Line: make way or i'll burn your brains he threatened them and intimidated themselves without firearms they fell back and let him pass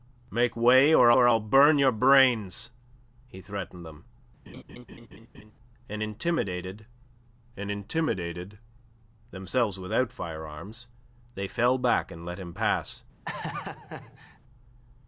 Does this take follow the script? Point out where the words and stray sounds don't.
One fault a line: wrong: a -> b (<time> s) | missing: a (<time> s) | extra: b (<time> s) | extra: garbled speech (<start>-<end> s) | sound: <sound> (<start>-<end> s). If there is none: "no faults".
extra: or (1.1 s)
sound: laugh (4.5-5.5 s)
extra: and intimidated (7.6 s)
sound: laugh (13.3-14.4 s)